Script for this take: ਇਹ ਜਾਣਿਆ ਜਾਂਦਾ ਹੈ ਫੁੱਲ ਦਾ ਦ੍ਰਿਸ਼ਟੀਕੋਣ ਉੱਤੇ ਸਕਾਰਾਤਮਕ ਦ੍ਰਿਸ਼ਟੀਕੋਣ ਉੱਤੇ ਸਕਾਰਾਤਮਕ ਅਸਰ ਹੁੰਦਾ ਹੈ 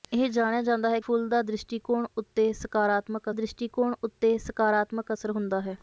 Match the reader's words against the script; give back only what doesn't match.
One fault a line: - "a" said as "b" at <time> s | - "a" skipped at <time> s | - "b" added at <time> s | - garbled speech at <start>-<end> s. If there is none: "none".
none